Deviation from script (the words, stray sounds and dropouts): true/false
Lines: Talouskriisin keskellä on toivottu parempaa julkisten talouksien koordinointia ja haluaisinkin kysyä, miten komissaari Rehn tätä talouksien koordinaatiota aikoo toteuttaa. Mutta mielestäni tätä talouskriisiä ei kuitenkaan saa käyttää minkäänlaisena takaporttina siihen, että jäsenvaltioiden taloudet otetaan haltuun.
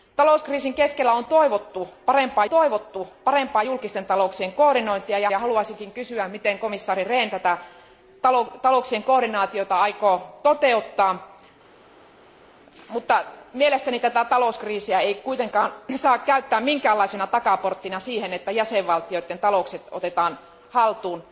true